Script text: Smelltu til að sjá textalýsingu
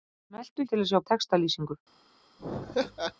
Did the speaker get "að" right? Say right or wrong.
right